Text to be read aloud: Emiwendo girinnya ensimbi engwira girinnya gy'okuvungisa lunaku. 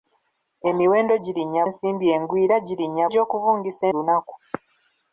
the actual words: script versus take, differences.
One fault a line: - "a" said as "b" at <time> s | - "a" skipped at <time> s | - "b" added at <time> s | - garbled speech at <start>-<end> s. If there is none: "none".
none